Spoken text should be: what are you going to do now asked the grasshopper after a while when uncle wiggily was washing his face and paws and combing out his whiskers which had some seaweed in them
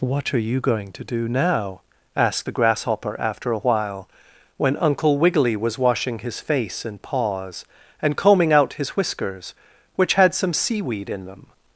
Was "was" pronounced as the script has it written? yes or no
yes